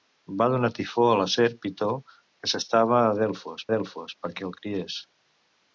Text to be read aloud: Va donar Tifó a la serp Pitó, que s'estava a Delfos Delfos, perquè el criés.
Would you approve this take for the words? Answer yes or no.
yes